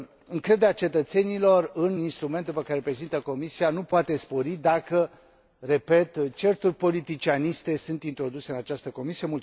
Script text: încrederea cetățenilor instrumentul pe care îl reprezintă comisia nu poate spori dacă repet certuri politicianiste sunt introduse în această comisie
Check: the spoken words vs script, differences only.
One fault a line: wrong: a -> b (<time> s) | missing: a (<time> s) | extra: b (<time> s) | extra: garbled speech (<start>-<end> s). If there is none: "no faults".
extra: în (1.7 s)